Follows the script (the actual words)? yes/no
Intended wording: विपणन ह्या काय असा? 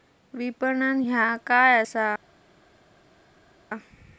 yes